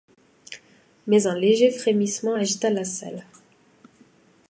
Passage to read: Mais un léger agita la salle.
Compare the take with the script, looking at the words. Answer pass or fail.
fail